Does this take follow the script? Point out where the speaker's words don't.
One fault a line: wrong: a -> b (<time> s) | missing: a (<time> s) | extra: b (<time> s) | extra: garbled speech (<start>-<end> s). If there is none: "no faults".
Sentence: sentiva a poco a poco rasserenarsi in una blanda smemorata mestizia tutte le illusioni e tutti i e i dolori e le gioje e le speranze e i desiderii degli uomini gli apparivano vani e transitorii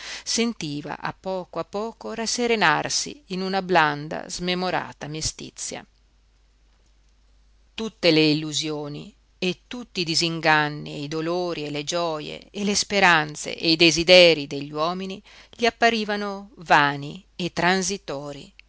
extra: disinganni (10.0 s)